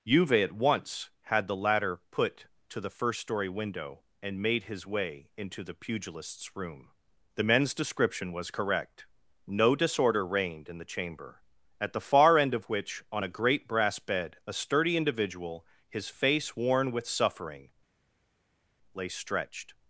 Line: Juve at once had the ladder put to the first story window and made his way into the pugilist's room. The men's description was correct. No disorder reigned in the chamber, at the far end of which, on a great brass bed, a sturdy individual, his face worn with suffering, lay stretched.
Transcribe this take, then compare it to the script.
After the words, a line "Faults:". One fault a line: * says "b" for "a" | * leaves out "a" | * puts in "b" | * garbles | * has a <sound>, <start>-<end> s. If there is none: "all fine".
Juve at once had the ladder put to the first story window and made his way into the pugilist's room. The men's description was correct. No disorder reigned in the chamber, at the far end of which, on a great brass bed, a sturdy individual, his face worn with suffering, lay stretched.
Faults:
all fine